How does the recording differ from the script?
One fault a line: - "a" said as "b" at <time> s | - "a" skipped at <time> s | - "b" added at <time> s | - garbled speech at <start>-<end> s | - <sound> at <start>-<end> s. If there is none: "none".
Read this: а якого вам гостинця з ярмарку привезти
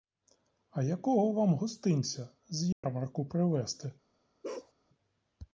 - dropout at 2.7-2.8 s
- bark at 4.4-4.7 s